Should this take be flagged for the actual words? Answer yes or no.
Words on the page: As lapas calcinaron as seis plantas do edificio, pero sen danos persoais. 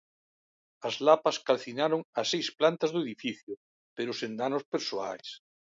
no